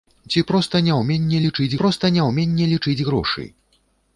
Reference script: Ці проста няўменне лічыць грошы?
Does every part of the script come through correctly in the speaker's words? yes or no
no